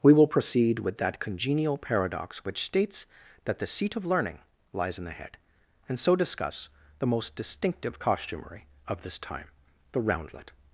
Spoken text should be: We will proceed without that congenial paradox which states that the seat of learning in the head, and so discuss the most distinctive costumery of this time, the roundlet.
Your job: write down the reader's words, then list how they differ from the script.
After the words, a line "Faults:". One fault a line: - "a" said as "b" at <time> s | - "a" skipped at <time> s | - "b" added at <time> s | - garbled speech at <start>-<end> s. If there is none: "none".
We will proceed with that congenial paradox which states that the seat of learning lies in the head, and so discuss the most distinctive costumery of this time, the roundlet.
Faults:
- "without" said as "with" at 0.8 s
- "lies" added at 4.7 s